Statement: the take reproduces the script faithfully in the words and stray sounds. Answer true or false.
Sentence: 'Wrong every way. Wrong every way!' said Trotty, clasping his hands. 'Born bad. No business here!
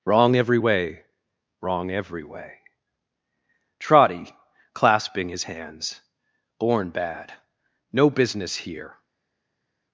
false